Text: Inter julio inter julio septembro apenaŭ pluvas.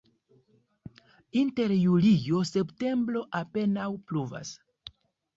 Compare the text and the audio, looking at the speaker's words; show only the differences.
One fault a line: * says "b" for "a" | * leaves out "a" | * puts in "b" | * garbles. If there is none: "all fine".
* leaves out "inter julio"